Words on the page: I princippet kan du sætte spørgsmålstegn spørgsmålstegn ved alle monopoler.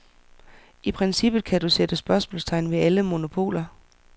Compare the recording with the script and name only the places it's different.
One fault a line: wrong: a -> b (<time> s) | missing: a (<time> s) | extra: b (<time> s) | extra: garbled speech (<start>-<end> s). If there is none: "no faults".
missing: spørgsmålstegn (2.7 s)